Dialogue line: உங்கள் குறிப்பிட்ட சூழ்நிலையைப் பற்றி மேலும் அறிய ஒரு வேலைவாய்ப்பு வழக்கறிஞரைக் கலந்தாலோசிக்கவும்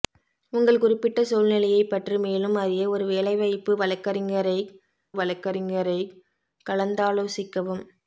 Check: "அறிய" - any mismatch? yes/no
no